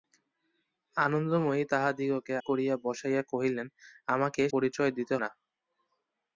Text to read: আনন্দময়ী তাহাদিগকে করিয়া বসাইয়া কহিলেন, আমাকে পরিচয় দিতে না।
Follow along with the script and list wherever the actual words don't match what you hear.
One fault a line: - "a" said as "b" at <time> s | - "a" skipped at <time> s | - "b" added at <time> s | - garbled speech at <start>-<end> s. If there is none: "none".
none